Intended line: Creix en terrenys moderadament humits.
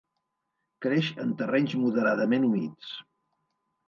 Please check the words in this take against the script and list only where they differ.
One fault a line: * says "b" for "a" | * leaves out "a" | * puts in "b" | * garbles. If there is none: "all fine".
all fine